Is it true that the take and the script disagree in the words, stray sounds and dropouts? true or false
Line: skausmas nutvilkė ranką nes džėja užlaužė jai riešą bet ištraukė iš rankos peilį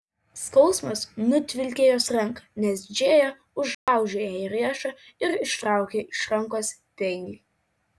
true